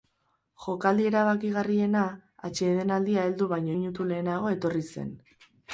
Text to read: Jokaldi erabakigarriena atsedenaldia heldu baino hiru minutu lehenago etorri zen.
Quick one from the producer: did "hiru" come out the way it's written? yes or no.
no